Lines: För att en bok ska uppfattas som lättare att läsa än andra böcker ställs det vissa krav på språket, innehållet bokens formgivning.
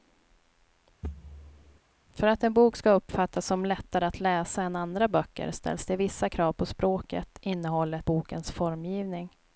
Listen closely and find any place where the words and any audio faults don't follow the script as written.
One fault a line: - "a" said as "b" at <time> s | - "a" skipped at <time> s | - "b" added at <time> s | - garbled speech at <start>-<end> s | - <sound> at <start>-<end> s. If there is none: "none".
- thud at 1.0-1.8 s